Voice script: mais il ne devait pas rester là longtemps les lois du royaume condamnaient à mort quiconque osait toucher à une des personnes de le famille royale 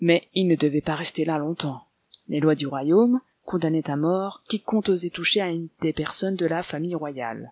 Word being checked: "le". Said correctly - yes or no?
no